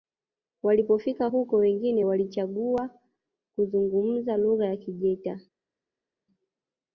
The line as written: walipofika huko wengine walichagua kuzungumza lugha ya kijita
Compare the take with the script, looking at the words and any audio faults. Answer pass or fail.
pass